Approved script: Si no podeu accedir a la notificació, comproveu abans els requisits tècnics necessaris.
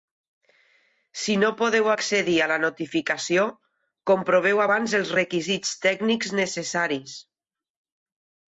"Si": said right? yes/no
yes